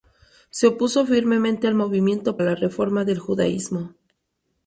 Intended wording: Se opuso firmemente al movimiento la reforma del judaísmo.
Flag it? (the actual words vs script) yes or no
no